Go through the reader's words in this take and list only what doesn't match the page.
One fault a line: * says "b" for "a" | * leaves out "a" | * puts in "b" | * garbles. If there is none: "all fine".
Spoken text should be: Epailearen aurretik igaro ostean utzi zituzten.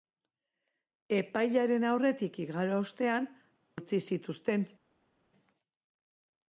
all fine